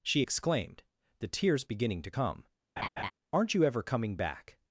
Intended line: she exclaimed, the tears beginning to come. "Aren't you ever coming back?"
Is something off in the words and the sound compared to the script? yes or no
yes